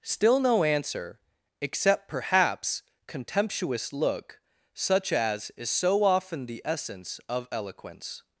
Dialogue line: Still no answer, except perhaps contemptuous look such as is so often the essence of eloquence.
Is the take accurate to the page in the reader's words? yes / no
yes